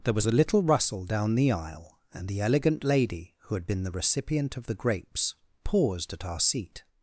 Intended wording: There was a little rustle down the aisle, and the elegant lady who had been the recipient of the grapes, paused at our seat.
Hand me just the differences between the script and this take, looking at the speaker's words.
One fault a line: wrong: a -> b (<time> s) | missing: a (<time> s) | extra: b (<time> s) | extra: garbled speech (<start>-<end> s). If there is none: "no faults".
no faults